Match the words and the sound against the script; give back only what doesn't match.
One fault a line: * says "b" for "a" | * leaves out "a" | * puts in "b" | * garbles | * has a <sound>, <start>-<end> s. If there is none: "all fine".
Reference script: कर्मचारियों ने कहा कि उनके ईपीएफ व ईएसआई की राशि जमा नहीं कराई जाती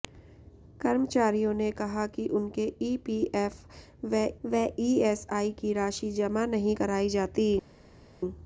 * puts in "व"